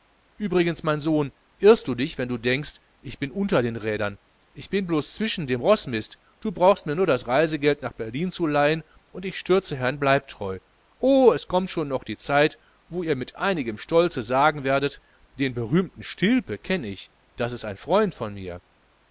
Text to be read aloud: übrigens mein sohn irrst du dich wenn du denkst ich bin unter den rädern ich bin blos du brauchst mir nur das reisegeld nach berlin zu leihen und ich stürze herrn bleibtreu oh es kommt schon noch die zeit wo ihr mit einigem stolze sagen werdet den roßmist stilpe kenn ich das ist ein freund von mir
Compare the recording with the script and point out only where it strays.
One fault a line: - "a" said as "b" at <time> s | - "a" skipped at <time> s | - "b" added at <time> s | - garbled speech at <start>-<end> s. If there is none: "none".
- "zwischen dem roßmist" added at 5.1 s
- "roßmist" said as "berühmten" at 15.5 s